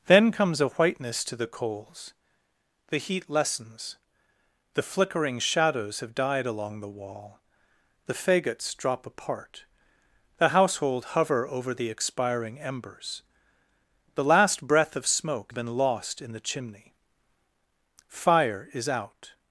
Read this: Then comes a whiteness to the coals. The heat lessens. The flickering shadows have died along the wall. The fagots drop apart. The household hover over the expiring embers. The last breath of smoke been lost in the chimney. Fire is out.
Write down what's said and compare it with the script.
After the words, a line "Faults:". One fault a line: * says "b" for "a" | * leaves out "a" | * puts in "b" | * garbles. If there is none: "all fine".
Then comes a whiteness to the coals. The heat lessens. The flickering shadows have died along the wall. The fagots drop apart. The household hover over the expiring embers. The last breath of smoke been lost in the chimney. Fire is out.
Faults:
all fine